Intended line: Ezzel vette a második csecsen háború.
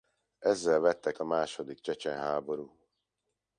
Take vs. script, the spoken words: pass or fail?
pass